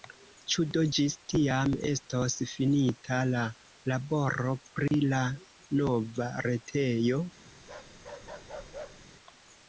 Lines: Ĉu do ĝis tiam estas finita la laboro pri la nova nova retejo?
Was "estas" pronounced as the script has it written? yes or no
no